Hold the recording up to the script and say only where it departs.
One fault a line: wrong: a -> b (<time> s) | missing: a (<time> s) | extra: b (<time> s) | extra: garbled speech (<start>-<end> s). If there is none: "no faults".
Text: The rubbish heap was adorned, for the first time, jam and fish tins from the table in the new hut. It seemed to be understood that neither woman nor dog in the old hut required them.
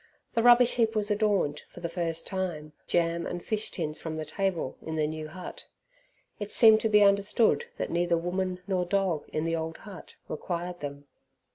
no faults